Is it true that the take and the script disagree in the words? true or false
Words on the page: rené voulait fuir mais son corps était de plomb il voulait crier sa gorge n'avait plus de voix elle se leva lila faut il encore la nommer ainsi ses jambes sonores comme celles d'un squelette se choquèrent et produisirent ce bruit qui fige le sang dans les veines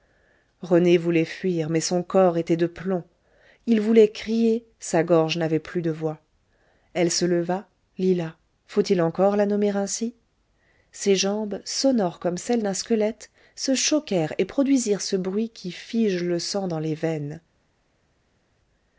false